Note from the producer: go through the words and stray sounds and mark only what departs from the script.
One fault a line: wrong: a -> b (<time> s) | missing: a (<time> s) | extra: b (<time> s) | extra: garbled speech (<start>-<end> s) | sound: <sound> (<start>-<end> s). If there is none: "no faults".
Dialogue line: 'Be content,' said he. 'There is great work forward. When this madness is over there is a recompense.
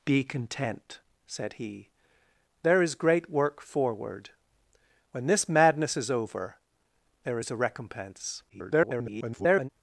extra: garbled speech (8.5-9.7 s)